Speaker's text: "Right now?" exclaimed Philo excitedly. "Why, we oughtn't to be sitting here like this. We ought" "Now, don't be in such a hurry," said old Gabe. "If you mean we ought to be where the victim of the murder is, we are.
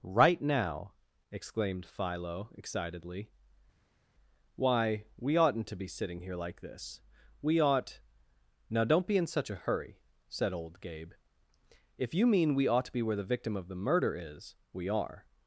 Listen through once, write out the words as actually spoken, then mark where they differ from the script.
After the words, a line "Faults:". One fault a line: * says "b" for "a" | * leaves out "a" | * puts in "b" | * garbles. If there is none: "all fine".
"Right now?" exclaimed Philo excitedly. "Why, we oughtn't to be sitting here like this. We ought" "Now, don't be in such a hurry," said old Gabe. "If you mean we ought to be where the victim of the murder is, we are.
Faults:
all fine